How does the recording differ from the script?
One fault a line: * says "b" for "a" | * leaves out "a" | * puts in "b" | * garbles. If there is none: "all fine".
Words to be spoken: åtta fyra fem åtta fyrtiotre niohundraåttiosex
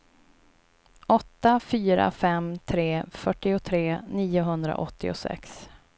* says "tre" for "åtta"